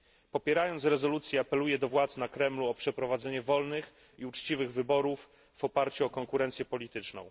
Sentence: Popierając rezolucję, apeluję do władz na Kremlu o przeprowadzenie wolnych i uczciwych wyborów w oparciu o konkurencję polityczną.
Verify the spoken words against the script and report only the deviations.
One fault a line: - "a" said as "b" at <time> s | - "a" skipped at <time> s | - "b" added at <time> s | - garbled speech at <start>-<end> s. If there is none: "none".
none